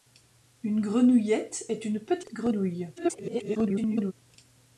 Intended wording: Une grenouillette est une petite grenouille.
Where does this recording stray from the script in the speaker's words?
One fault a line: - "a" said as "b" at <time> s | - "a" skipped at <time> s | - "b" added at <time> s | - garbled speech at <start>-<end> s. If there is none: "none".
- garbled speech at 3.0-4.1 s